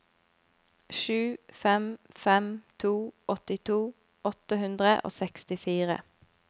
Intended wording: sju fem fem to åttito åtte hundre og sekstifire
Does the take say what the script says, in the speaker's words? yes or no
yes